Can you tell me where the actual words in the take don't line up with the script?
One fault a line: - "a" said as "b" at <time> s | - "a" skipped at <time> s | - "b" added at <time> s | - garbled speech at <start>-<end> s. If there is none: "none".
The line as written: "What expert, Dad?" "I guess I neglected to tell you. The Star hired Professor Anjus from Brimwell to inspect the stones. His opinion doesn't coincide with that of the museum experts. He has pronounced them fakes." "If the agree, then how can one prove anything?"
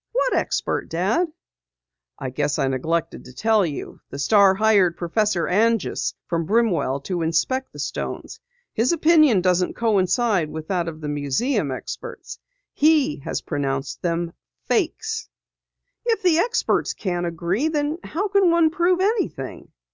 - "experts can't" added at 16.4 s